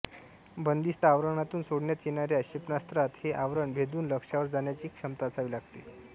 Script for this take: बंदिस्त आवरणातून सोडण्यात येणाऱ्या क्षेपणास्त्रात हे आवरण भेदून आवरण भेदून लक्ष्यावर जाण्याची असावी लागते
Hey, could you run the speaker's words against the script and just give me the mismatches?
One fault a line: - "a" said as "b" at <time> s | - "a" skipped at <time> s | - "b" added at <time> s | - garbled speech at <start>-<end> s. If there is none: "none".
- "आवरण भेदून" skipped at 4.1 s
- "क्षमता" added at 4.9 s